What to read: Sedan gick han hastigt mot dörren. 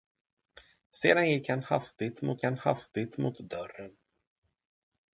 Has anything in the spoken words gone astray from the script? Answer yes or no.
yes